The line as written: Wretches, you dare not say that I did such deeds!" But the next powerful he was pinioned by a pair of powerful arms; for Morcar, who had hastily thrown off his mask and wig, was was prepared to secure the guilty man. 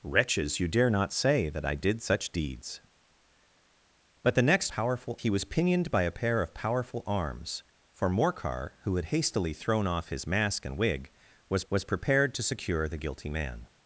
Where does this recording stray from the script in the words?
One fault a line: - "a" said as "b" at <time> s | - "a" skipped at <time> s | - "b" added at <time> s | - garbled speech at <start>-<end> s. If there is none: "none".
none